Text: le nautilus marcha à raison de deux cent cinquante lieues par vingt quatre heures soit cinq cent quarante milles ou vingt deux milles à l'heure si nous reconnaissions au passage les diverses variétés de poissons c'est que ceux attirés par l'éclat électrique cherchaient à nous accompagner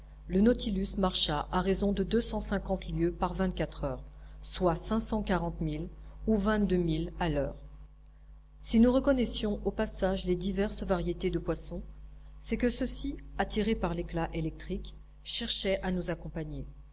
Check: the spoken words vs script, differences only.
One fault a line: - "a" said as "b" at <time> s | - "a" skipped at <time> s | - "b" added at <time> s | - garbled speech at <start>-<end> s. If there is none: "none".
- "ci" added at 12.9 s